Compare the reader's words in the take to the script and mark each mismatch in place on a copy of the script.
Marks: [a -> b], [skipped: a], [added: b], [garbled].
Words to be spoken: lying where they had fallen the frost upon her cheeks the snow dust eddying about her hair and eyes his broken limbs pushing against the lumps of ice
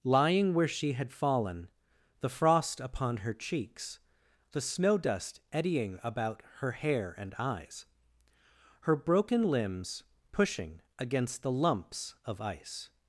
lying where [they -> she] had fallen the frost upon her cheeks the snow dust eddying about her hair and eyes [his -> her] broken limbs pushing against the lumps of ice